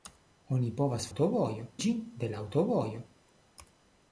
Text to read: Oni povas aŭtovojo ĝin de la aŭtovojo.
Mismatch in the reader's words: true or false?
false